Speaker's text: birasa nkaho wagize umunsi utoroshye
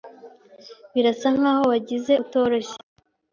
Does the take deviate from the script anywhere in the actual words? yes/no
yes